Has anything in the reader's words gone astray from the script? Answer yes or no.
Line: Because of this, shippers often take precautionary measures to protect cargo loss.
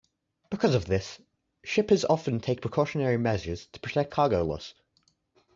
no